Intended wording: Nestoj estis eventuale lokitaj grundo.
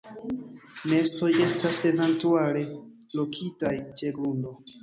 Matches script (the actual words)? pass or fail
fail